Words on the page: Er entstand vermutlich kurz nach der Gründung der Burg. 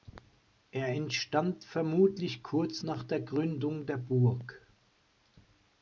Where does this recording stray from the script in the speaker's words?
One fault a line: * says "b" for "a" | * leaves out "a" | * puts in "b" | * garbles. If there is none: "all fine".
all fine